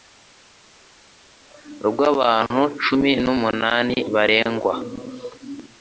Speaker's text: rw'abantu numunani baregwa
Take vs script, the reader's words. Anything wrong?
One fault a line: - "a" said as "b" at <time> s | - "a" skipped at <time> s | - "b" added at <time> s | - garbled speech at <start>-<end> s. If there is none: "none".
- "cumi" added at 2.8 s